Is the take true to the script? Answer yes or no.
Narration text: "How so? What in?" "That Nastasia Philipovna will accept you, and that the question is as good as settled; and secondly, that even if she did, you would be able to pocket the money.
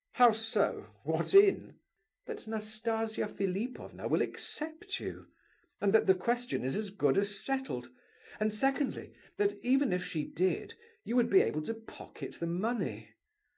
yes